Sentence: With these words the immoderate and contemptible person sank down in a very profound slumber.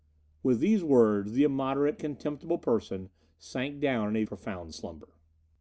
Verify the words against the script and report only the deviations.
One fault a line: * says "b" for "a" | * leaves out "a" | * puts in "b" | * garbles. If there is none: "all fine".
* leaves out "and"
* leaves out "very"